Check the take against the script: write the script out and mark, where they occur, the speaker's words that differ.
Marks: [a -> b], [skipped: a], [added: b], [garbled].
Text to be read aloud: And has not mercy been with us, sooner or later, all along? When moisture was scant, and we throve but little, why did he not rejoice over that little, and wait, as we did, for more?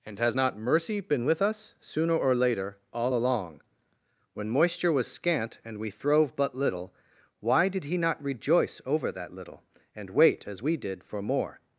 And has not mercy been with us, sooner or later, all along? When moisture was scant, and we throve but little, why did he not rejoice over that little, and wait, as we did, for more?